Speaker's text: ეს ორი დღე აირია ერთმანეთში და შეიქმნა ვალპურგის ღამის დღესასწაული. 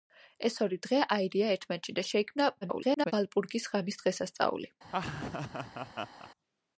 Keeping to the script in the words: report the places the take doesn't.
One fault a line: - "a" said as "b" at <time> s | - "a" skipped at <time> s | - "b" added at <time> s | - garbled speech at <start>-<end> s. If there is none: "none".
- garbled speech at 2.6-3.1 s